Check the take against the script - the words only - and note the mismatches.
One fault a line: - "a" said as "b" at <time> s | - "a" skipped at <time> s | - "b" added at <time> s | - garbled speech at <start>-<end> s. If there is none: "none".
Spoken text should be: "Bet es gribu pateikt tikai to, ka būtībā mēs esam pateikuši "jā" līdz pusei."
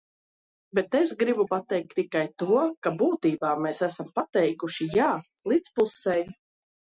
none